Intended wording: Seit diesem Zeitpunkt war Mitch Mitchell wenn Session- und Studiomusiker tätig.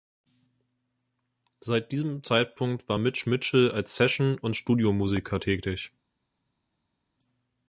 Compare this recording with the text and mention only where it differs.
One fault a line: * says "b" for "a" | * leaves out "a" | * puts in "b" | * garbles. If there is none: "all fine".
* says "als" for "wenn"